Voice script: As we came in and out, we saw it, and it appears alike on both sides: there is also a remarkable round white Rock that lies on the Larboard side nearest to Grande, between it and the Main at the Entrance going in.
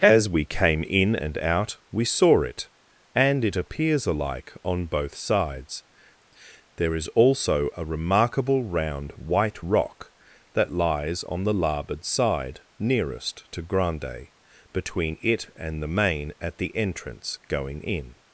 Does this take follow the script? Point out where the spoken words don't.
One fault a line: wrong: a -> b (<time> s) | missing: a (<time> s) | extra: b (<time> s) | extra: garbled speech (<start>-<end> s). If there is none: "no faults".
no faults